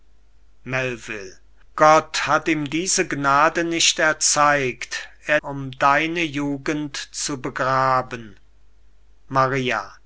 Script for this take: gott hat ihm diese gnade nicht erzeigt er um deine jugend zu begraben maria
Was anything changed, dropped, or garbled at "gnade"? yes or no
no